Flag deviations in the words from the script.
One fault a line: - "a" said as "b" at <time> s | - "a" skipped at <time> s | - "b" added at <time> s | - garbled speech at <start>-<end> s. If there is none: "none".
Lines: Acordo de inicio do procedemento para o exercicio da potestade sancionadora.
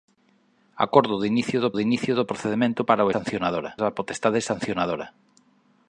- "de inicio do" added at 1.7 s
- "exercicio" said as "sancionadora" at 3.1 s